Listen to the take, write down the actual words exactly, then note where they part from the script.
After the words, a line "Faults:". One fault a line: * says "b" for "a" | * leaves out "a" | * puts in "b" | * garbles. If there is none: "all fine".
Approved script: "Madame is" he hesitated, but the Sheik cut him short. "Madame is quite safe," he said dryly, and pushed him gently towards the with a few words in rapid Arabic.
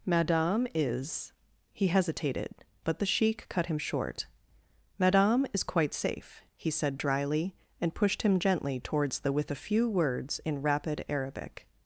"Madame is" he hesitated, but the Sheik cut him short. "Madame is quite safe," he said dryly, and pushed him gently towards the with a few words in rapid Arabic.
Faults:
all fine